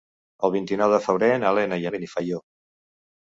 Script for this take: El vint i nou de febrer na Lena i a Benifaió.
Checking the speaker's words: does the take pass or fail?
pass